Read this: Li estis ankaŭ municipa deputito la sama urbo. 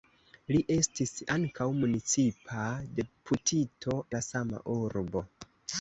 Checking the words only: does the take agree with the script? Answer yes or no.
yes